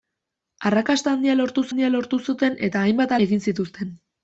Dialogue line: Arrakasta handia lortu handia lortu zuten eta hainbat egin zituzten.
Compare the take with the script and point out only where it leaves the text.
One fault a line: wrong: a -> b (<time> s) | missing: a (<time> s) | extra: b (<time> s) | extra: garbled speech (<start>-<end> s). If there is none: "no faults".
no faults